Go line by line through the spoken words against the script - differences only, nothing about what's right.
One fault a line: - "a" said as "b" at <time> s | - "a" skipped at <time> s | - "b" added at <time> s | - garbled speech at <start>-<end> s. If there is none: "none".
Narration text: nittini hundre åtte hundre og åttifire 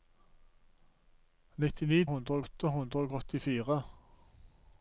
none